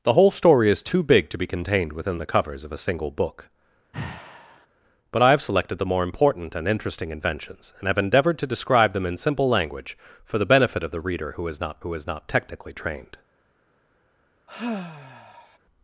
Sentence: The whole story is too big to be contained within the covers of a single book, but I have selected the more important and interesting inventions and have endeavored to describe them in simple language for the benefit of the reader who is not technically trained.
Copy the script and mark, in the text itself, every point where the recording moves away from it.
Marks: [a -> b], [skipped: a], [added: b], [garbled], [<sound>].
The whole story is too big to be contained within the covers of a single book, [sigh] but I have selected the more important and interesting inventions and have endeavored to describe them in simple language for the benefit of the reader who is not [added: who is not] technically trained. [sigh]